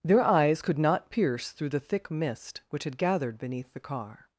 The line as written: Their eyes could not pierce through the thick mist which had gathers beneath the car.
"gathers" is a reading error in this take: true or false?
true